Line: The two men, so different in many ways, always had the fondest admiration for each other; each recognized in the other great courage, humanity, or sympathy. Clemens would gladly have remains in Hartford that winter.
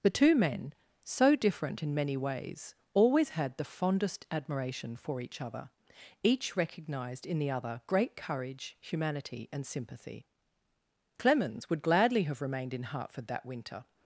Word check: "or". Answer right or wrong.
wrong